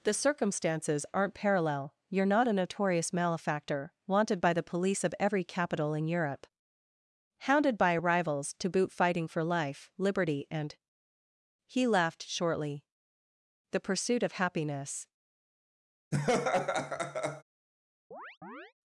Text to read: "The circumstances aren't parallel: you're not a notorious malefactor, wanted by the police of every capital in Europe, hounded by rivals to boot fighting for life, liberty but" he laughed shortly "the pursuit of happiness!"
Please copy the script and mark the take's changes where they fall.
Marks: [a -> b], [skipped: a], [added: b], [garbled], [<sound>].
"The circumstances aren't parallel: you're not a notorious malefactor, wanted by the police of every capital in Europe, hounded by rivals to boot fighting for life, liberty [but" -> and] he laughed shortly "the pursuit of happiness!" [laugh] [chirp]